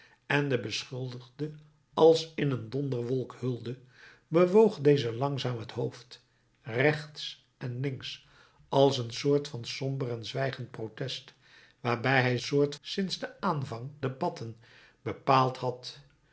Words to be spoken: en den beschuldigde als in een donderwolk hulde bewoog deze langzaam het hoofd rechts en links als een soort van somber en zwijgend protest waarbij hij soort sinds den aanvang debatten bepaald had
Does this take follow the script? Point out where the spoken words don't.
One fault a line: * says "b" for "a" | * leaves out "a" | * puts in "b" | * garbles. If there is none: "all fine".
all fine